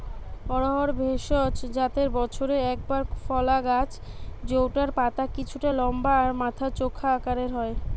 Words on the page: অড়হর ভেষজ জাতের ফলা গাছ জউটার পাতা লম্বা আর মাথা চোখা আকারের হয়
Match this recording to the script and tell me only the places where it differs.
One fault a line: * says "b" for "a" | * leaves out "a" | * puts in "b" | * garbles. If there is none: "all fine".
* puts in "বছরে একবার"
* puts in "কিছুটা"